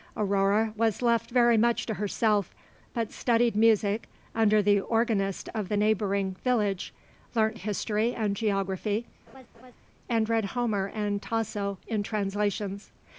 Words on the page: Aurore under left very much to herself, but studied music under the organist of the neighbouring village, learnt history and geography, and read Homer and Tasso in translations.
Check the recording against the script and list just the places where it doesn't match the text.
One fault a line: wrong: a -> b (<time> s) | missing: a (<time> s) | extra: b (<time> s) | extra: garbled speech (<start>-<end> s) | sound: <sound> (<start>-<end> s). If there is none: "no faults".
wrong: under -> was (0.8 s)
sound: laugh (9.3-9.8 s)